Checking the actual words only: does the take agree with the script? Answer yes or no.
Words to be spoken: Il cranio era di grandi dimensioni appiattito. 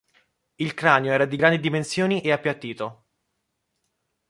no